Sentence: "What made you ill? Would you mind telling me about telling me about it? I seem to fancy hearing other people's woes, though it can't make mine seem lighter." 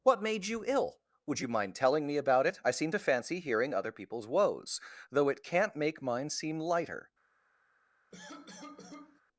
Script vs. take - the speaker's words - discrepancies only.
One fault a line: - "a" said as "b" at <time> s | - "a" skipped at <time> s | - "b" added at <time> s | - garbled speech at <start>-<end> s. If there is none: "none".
- "telling me about" skipped at 2.5 s